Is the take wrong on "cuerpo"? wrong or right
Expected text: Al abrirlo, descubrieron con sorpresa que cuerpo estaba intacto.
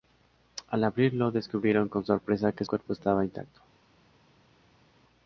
right